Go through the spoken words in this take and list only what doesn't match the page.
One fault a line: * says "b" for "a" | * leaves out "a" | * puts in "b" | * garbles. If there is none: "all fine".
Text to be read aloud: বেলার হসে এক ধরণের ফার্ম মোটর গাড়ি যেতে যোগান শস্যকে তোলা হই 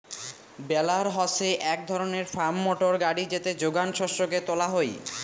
all fine